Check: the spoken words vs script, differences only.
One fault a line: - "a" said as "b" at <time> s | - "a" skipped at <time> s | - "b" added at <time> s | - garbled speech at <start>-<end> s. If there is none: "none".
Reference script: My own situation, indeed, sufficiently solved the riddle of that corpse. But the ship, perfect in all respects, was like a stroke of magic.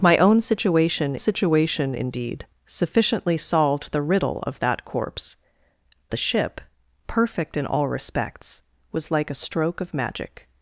- "situation" added at 1.2 s
- "But" skipped at 5.4 s